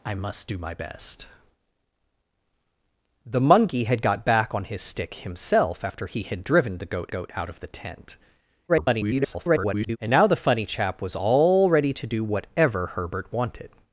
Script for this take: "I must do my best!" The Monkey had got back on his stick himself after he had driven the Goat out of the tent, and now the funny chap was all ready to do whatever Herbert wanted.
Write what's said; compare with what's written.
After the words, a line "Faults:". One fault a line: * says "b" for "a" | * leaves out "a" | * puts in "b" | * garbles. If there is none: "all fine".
"I must do my best!" The Monkey had got back on his stick himself after he had driven the Goat Goat out of the tent, [garbled] and now the funny chap was all ready to do whatever Herbert wanted.
Faults:
* puts in "Goat"
* garbles